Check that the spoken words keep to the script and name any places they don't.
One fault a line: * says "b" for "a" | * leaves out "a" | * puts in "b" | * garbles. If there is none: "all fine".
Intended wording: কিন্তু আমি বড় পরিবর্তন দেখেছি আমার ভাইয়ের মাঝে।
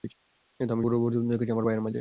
all fine